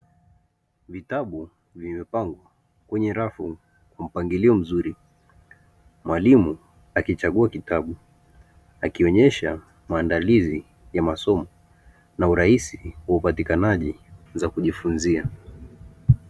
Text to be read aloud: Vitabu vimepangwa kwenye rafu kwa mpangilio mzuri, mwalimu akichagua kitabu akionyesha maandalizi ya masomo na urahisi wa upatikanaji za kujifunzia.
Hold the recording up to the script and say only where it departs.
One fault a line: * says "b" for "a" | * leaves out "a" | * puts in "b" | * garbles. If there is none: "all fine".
all fine